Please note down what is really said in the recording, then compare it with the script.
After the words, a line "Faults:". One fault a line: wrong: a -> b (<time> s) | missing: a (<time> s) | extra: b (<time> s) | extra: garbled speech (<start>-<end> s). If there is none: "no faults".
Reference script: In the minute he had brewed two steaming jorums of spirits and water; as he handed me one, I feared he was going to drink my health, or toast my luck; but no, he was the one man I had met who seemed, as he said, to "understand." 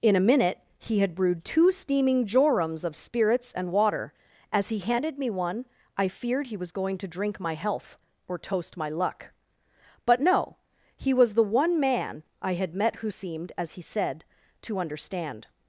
In a minute he had brewed two steaming jorums of spirits and water; as he handed me one, I feared he was going to drink my health, or toast my luck; but no, he was the one man I had met who seemed, as he said, to "understand."
Faults:
wrong: the -> a (0.1 s)